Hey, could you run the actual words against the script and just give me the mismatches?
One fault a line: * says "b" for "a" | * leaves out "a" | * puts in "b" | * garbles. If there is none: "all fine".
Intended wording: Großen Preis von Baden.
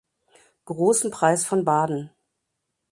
all fine